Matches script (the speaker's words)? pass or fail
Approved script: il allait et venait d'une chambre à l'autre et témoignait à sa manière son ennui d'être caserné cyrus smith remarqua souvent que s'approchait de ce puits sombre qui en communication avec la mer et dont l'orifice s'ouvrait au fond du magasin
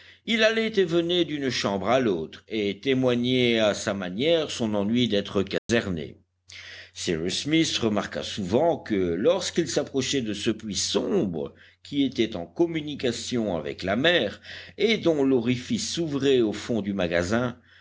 fail